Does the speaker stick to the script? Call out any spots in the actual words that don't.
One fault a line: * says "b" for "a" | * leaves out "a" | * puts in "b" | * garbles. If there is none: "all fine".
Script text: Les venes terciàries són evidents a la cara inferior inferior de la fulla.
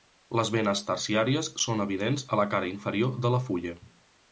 * leaves out "inferior"